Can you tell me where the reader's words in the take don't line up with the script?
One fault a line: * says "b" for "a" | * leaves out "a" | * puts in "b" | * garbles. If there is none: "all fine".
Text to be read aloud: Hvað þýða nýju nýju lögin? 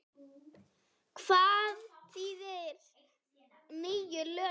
* leaves out "nýju"